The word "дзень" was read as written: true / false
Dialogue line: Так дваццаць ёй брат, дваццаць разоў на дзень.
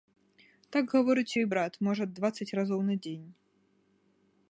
true